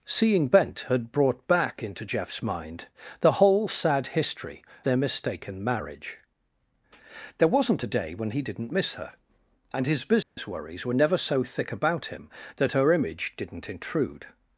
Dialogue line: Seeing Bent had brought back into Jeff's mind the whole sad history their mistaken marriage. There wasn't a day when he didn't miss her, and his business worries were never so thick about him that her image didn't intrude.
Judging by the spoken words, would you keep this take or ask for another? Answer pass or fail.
pass